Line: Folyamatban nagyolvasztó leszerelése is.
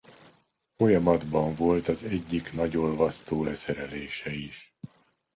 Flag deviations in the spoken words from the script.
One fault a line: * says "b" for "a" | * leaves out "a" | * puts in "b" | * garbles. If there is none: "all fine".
* puts in "volt az egyik"